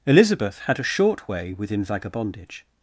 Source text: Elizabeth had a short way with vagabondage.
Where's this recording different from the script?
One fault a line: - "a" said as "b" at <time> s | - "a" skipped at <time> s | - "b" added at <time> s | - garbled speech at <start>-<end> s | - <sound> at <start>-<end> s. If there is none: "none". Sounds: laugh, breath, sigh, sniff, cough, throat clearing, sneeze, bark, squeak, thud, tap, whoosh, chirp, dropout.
- "with" said as "within" at 1.5 s